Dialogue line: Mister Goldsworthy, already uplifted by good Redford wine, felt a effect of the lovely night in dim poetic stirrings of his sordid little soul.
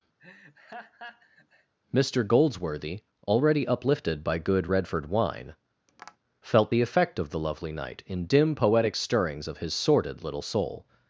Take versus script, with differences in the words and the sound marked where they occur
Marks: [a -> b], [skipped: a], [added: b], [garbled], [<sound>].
[laugh] Mister Goldsworthy, already uplifted by good Redford wine, [tap] felt [a -> the] effect of the lovely night in dim poetic stirrings of his sordid little soul.